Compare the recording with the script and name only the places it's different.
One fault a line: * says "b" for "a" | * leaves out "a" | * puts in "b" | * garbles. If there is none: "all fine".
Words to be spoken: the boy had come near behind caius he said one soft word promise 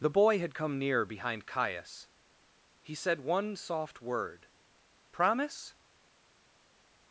all fine